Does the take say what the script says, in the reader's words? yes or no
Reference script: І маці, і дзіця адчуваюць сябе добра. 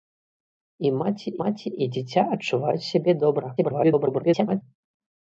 no